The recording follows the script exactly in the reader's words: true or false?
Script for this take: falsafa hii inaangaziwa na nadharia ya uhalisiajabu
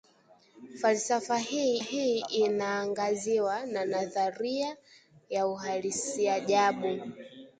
false